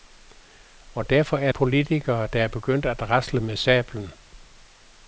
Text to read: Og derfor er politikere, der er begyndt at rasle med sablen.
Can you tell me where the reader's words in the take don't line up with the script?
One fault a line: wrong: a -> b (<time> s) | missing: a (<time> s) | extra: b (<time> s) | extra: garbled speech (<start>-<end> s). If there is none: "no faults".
no faults